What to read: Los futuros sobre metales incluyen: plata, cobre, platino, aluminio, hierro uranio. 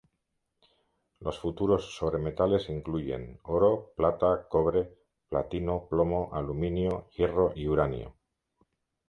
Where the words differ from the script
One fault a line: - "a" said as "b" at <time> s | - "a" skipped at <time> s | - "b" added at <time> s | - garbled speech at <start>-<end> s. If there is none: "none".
- "oro" added at 3.4 s
- "plomo" added at 5.9 s
- "y" added at 7.5 s